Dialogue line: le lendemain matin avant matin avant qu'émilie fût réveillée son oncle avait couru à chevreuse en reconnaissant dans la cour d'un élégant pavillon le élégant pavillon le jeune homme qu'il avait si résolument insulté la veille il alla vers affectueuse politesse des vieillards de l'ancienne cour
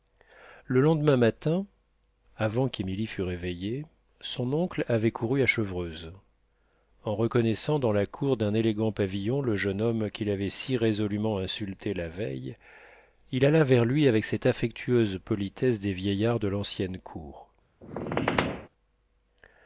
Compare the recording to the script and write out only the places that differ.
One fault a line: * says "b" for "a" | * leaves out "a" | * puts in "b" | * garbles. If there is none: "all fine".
* leaves out "matin avant"
* leaves out "élégant pavillon le"
* puts in "lui avec cette"